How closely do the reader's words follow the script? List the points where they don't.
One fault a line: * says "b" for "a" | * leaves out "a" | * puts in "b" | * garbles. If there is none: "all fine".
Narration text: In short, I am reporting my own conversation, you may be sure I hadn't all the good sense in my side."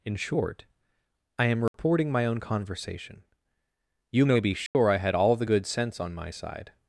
* says "had" for "hadn't"
* says "on" for "in"